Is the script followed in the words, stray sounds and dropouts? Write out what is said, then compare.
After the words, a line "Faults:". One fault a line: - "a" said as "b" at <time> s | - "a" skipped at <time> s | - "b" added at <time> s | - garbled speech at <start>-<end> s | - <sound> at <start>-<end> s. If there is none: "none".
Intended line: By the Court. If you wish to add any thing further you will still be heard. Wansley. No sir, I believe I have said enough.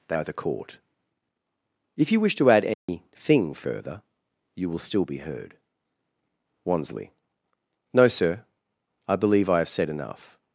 They are the Court. If you wish to add any thing further you will still be heard. Wansley. No sir, I believe I have said enough.
Faults:
- "By" said as "They are" at 0.1 s
- dropout at 2.7-2.9 s